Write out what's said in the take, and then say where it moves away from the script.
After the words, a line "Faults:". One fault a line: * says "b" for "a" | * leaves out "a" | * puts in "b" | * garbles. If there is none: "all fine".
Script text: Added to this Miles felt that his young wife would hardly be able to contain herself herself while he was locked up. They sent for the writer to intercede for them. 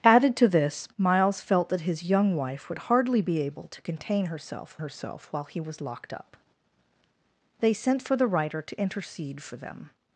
Added to this Miles felt that his young wife would hardly be able to contain herself herself while he was locked up. They sent for the writer to intercede for them.
Faults:
all fine